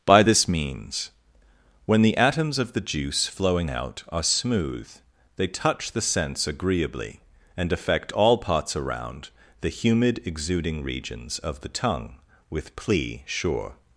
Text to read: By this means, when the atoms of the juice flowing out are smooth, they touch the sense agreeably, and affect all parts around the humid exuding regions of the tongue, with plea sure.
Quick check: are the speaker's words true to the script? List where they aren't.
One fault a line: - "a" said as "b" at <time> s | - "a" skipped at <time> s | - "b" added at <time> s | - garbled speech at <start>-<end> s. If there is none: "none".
none